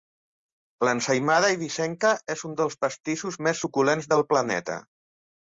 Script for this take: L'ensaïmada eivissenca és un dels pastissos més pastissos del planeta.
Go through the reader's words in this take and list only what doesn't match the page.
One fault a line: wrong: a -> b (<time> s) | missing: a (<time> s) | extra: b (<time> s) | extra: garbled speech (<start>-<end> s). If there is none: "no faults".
wrong: pastissos -> suculents (3.6 s)